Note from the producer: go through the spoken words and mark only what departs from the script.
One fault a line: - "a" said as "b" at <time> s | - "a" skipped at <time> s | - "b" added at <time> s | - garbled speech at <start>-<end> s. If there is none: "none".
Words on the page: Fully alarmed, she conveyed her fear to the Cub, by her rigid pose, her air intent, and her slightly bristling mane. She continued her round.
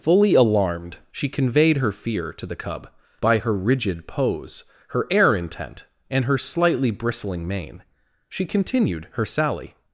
- "round" said as "sally" at 9.3 s